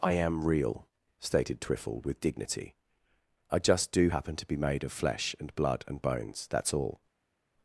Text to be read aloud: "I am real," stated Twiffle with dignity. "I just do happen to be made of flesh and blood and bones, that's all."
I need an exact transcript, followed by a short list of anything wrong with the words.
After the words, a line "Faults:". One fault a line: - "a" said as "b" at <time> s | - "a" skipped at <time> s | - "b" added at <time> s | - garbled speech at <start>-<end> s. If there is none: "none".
"I am real," stated Twiffle with dignity. "I just do happen to be made of flesh and blood and bones, that's all."
Faults:
none